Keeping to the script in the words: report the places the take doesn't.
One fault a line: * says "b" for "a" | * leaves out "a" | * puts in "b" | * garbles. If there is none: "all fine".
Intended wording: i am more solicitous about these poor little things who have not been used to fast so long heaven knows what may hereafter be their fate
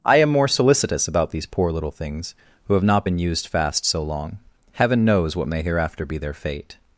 * leaves out "to"